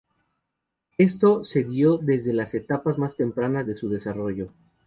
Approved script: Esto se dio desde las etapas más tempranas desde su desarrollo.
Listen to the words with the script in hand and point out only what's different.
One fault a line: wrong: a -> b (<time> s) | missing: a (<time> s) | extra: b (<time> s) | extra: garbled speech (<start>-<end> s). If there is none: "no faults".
wrong: desde -> de (3.7 s)